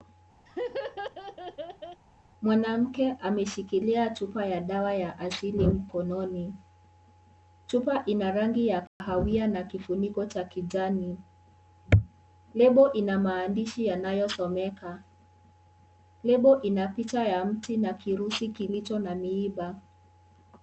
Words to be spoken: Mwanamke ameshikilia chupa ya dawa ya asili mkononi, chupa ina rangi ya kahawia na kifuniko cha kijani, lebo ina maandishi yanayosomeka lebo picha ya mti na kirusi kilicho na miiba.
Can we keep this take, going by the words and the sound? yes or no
no